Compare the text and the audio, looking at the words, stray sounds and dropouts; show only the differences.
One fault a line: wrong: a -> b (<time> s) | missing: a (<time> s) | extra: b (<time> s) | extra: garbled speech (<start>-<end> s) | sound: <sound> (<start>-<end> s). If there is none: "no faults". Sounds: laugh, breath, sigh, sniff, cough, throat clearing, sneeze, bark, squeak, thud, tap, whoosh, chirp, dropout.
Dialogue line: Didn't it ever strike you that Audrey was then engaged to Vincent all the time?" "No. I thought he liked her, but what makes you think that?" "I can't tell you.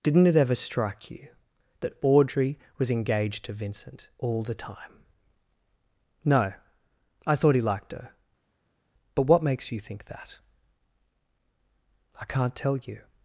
missing: then (2.9 s)